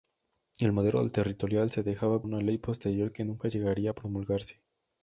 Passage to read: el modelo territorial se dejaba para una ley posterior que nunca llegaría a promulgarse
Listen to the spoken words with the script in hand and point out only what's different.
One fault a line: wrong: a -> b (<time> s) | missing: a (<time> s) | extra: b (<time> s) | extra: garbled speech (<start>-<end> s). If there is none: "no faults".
missing: para (2.2 s)